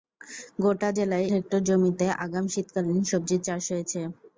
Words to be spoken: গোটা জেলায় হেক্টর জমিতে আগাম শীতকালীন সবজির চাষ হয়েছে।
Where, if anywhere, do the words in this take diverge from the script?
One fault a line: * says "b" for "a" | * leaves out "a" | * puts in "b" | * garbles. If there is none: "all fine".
all fine